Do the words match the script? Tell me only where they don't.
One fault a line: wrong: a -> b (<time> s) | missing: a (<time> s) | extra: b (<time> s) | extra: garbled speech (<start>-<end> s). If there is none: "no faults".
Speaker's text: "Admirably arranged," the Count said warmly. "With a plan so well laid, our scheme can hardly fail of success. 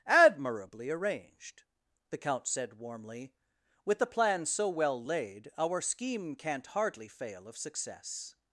wrong: a -> the (4.0 s)
wrong: can -> can't (6.3 s)